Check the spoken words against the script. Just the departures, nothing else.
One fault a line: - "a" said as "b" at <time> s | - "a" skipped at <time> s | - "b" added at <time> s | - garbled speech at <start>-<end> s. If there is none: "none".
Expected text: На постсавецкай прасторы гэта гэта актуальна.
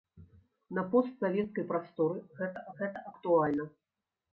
none